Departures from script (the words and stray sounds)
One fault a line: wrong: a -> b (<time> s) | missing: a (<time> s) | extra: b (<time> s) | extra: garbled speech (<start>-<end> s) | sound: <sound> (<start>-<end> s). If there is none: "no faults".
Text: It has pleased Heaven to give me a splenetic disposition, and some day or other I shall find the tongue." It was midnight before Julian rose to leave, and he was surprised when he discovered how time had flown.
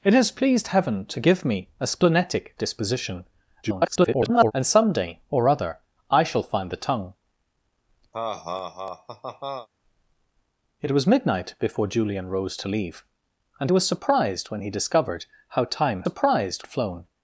extra: garbled speech (3.6-4.5 s)
sound: laugh (8.1-9.7 s)
missing: he (13.7 s)
wrong: had -> surprised (16.0 s)